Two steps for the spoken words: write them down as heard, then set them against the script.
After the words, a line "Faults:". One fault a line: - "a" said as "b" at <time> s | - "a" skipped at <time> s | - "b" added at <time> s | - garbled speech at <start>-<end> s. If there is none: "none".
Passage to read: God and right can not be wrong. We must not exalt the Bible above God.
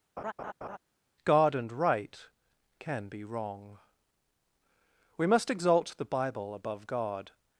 God and right can be wrong. We must exalt the Bible above God.
Faults:
- "not" skipped at 3.1 s
- "not" skipped at 5.5 s